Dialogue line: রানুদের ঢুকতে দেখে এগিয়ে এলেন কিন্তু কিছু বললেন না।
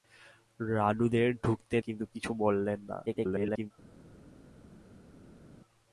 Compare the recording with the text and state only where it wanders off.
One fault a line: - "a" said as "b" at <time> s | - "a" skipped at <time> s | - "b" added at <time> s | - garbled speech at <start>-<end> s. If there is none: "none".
- "দেখে এগিয়ে এলেন" skipped at 1.8 s
- garbled speech at 3.1-3.7 s